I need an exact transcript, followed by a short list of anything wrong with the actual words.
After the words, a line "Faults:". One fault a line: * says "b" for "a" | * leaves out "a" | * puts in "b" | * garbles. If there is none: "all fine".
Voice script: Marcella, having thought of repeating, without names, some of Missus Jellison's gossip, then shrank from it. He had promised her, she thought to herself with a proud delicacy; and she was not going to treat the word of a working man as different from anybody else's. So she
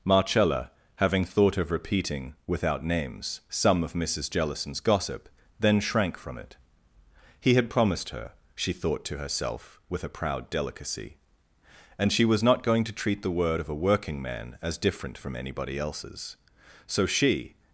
Marcella, having thought of repeating, without names, some of Missus Jellison's gossip, then shrank from it. He had promised her, she thought to herself with a proud delicacy; and she was not going to treat the word of a working man as different from anybody else's. So she
Faults:
all fine